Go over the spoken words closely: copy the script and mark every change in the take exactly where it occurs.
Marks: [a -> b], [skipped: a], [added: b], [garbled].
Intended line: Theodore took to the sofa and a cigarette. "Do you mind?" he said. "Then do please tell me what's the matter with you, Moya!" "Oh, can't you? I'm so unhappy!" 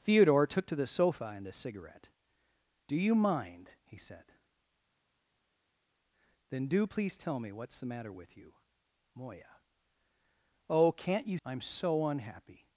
Theodore took to the sofa and a cigarette. "Do you mind?" he said. "Then do please tell me what's the matter with you, Moya!" "Oh, can't you? I'm so unhappy!"